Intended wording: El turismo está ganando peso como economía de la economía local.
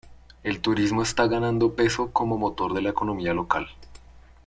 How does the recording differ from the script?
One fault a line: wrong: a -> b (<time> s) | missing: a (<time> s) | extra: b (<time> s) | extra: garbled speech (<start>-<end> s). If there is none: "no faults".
wrong: economía -> motor (2.4 s)